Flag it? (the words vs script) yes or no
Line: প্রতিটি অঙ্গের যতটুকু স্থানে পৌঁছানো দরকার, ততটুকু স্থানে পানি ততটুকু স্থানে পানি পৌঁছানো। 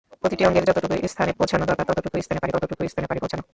no